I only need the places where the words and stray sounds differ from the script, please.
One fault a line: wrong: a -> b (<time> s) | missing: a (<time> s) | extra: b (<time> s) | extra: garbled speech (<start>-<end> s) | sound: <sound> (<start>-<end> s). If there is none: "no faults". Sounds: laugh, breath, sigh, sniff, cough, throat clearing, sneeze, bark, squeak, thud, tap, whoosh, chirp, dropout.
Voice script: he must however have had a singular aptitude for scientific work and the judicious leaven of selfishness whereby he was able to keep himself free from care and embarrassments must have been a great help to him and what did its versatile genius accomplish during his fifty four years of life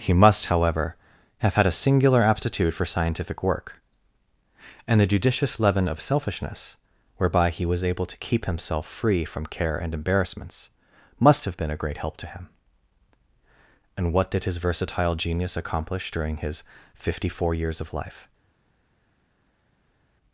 wrong: its -> his (14.4 s)